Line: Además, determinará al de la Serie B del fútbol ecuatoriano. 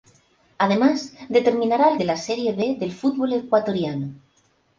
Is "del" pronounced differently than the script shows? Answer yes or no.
no